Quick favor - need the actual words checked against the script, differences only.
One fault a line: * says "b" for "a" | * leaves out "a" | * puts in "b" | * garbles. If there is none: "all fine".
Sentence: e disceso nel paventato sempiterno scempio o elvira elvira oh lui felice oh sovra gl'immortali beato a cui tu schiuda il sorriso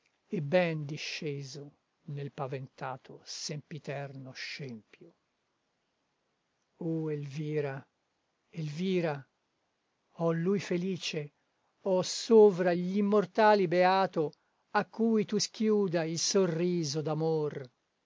* puts in "ben"